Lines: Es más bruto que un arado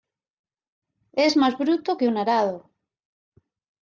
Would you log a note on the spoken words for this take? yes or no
no